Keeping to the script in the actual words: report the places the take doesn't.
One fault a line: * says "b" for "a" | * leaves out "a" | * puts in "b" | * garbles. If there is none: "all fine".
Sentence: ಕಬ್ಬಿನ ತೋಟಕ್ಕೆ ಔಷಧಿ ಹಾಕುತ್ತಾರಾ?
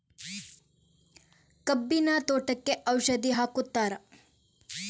all fine